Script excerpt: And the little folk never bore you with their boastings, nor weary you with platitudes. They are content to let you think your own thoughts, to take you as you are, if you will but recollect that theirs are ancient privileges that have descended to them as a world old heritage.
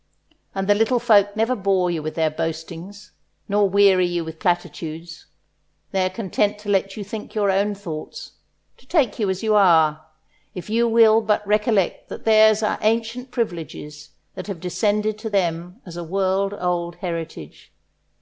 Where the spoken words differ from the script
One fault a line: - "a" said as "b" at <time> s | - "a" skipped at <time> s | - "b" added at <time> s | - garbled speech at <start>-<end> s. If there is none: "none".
none